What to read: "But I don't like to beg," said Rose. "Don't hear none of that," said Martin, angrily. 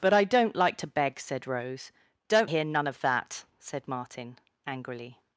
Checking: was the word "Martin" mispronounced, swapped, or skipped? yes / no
no